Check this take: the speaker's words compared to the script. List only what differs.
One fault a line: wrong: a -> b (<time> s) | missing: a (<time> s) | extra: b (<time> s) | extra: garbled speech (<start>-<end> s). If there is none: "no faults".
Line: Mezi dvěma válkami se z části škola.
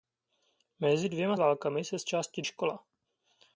no faults